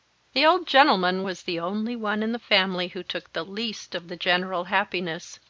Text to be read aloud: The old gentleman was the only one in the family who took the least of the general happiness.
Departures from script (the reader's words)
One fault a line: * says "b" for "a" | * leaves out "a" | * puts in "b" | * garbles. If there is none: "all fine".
all fine